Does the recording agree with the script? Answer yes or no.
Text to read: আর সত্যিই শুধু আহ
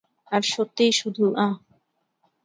yes